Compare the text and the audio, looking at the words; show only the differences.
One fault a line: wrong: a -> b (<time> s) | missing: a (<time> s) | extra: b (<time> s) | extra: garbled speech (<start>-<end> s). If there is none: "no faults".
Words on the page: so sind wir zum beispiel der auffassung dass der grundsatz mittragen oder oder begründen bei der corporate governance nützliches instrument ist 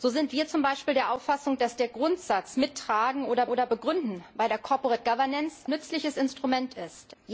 no faults